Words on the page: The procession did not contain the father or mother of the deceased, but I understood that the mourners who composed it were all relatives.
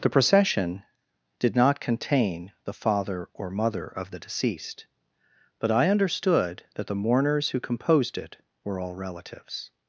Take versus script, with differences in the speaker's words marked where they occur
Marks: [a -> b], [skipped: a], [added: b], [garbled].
The procession did not contain the father or mother of the deceased, but I understood that the mourners who composed it were all relatives.